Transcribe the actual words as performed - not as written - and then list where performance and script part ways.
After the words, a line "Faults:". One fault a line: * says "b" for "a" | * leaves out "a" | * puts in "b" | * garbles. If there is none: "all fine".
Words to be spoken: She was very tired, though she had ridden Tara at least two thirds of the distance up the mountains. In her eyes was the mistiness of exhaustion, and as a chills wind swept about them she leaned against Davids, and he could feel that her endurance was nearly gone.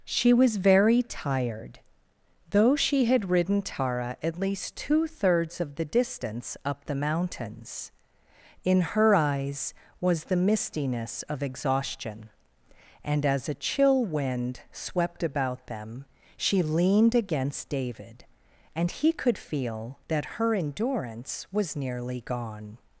She was very tired, though she had ridden Tara at least two thirds of the distance up the mountains. In her eyes was the mistiness of exhaustion, and as a chill wind swept about them she leaned against David, and he could feel that her endurance was nearly gone.
Faults:
* says "chill" for "chills"
* says "David" for "Davids"